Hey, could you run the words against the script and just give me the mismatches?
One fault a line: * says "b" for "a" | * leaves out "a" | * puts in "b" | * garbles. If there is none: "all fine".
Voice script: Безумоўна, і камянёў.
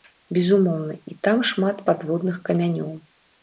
* puts in "там шмат падводных"